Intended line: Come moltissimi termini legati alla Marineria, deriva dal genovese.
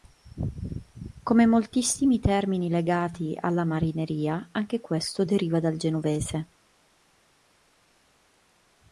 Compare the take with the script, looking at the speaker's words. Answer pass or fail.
fail